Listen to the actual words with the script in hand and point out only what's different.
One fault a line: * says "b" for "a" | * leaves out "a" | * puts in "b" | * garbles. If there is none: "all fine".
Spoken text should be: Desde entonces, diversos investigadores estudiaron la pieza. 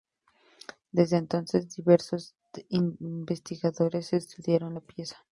all fine